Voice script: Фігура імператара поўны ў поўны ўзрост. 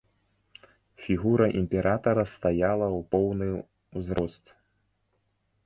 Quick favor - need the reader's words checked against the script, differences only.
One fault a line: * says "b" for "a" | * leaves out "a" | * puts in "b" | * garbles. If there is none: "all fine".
* says "стаяла" for "поўны"